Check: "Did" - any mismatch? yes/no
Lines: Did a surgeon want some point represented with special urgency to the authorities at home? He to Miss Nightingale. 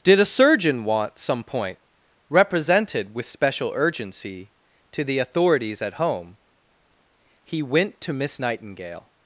no